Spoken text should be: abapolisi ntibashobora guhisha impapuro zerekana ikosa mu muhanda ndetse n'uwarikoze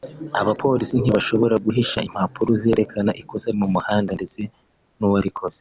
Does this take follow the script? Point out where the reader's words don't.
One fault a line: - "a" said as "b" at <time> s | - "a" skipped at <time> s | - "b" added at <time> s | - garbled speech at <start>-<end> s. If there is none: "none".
none